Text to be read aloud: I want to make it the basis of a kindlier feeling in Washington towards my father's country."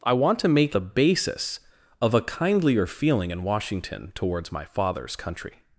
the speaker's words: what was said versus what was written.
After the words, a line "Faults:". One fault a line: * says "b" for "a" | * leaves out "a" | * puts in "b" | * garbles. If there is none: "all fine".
I want to make the basis of a kindlier feeling in Washington towards my father's country."
Faults:
* leaves out "it"